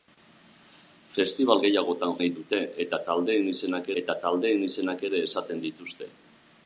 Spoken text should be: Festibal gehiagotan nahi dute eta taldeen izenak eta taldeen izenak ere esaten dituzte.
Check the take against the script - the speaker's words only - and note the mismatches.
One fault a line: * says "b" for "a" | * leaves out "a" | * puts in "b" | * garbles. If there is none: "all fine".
all fine